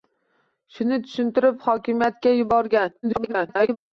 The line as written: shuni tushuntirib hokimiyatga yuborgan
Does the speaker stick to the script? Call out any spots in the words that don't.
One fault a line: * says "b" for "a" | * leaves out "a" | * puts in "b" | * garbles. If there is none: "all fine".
* garbles